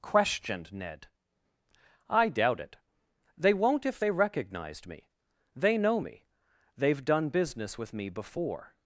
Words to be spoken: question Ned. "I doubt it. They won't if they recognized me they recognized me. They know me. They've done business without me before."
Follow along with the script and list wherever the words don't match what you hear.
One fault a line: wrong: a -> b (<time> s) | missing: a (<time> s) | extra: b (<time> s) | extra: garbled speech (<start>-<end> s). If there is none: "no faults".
wrong: question -> questioned (0.0 s)
missing: recognized me They (5.8 s)
wrong: without -> with (7.8 s)